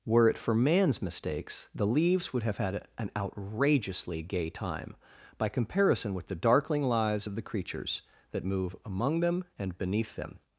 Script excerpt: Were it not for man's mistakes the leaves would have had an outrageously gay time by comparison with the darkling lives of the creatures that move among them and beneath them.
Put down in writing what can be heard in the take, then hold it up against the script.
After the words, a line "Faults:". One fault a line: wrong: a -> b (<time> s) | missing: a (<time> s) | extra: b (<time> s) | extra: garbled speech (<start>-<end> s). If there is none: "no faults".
Were it for man's mistakes the leaves would have had an outrageously gay time by comparison with the darkling lives of the creatures that move among them and beneath them.
Faults:
missing: not (0.4 s)